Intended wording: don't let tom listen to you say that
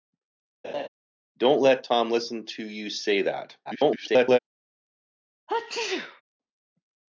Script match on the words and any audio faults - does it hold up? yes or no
no